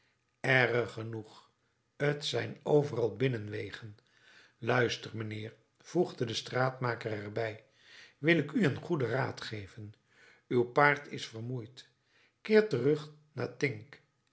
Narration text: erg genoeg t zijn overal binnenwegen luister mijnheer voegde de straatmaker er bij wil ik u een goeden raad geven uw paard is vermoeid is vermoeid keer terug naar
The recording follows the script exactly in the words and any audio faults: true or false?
false